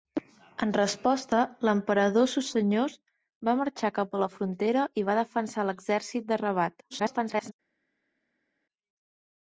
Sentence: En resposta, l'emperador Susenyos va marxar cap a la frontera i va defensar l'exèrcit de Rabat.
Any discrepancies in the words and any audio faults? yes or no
yes